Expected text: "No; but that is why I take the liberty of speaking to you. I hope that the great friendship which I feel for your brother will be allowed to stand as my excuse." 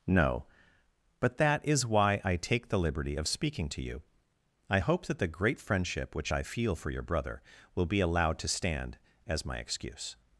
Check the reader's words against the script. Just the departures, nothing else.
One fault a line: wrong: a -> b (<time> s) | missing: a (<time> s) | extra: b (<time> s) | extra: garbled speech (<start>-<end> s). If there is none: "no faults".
no faults